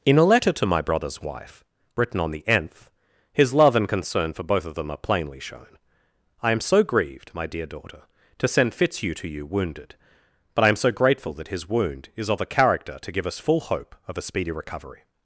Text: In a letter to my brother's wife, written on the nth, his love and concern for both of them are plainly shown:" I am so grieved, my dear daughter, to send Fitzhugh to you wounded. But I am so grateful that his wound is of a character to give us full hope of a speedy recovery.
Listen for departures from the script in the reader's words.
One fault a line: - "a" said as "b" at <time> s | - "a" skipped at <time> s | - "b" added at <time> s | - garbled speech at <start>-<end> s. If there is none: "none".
none